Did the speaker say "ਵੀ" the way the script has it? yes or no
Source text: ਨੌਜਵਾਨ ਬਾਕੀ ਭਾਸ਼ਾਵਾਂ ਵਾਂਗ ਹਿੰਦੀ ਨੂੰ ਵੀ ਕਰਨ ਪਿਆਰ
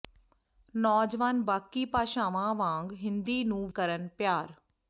no